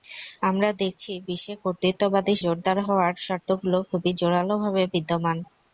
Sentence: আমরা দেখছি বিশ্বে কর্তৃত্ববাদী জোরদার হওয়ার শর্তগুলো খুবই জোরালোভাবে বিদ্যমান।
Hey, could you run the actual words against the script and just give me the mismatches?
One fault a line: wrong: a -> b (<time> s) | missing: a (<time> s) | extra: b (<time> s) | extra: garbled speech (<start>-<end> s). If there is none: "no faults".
no faults